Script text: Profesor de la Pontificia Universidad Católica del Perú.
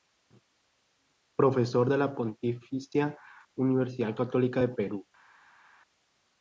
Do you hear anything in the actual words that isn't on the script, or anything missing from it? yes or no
no